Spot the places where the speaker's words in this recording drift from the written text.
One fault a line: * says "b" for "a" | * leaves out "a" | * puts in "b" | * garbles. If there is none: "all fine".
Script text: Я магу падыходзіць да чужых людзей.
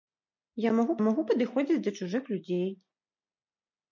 * puts in "магу"